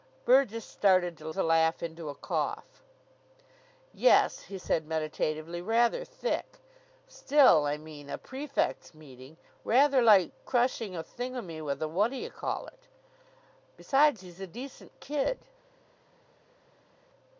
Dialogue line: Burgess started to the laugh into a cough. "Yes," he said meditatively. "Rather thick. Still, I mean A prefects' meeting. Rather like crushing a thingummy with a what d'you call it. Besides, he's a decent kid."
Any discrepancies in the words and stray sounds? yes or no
no